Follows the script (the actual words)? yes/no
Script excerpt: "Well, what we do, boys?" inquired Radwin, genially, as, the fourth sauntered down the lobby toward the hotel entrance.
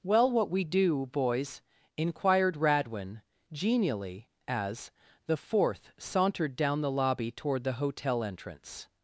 yes